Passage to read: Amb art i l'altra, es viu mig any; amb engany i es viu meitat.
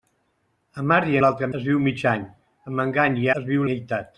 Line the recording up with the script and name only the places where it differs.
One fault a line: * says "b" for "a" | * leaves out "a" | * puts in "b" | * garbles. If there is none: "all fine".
all fine